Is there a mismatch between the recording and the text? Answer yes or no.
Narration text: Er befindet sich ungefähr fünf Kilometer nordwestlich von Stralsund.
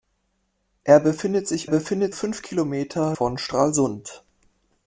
yes